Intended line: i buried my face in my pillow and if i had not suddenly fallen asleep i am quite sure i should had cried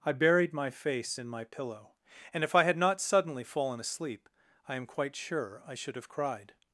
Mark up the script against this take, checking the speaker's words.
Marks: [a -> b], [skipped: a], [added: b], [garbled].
i buried my face in my pillow and if i had not suddenly fallen asleep i am quite sure i should [had -> have] cried